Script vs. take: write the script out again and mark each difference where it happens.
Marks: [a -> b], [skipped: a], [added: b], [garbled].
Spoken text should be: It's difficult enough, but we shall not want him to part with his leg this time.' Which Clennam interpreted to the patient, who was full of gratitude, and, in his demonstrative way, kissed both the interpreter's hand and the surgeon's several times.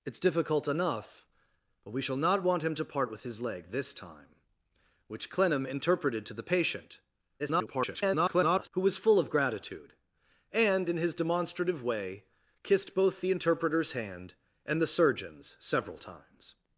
It's difficult enough, but we shall not want him to part with his leg this time.' Which Clennam interpreted to the patient, [garbled] who was full of gratitude, and, in his demonstrative way, kissed both the interpreter's hand and the surgeon's several times.